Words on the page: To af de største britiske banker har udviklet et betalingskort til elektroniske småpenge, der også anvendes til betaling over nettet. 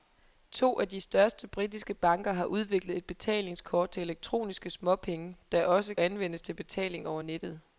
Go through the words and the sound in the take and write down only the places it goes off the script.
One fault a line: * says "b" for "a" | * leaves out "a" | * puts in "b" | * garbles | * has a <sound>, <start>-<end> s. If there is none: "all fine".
all fine